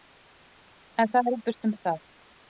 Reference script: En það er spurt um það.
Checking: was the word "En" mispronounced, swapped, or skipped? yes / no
no